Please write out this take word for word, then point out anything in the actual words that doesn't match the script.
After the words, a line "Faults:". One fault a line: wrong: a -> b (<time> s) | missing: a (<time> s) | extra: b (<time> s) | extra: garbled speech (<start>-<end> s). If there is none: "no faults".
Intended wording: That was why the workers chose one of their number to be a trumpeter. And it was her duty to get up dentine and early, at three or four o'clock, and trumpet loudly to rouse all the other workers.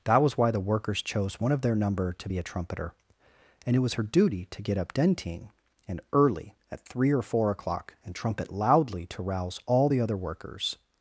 That was why the workers chose one of their number to be a trumpeter. And it was her duty to get up dentine and early, at three or four o'clock, and trumpet loudly to rouse all the other workers.
Faults:
no faults